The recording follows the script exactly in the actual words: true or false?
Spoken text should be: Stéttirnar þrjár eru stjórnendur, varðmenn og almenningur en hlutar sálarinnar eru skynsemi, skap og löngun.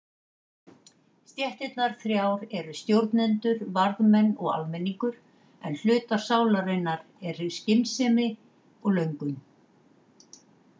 false